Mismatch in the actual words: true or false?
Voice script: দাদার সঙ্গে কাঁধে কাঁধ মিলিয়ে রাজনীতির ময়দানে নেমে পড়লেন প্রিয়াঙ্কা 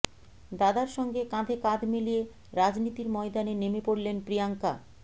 false